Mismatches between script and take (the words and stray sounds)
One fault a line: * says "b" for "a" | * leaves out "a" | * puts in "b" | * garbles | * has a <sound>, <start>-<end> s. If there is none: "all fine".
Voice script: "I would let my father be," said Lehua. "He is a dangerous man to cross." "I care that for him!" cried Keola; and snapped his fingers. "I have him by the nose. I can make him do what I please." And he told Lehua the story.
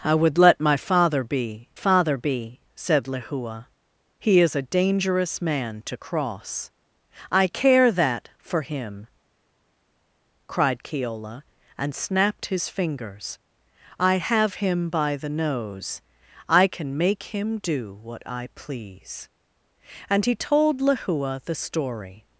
* puts in "father be"